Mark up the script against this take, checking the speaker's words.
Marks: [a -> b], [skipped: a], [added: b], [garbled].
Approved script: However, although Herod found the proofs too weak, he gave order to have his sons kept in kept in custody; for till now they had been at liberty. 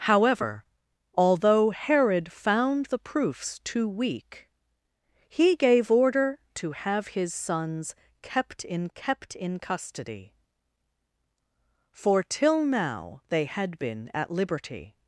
However, although Herod found the proofs too weak, he gave order to have his sons kept in kept in custody; for till now they had been at liberty.